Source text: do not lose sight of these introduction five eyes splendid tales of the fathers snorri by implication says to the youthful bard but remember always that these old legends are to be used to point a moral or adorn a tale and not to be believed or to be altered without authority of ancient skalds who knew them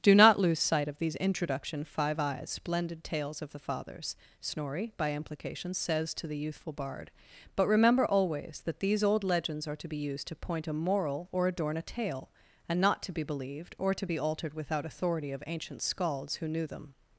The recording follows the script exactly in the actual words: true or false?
true